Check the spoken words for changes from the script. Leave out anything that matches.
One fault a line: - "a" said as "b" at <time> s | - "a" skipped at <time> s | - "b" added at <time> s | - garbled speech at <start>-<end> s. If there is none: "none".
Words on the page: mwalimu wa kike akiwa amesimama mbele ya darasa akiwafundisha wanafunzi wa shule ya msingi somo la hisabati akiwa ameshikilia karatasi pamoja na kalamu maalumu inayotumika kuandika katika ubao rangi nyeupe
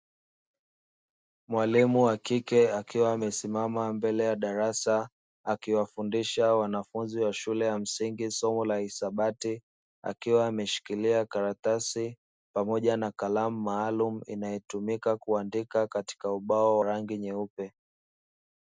none